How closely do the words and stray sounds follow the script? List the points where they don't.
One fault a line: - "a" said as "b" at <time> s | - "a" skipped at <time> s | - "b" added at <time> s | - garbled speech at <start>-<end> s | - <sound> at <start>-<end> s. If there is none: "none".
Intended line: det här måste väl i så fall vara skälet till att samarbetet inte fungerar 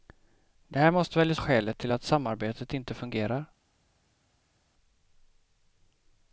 - "så fall vara" skipped at 1.4 s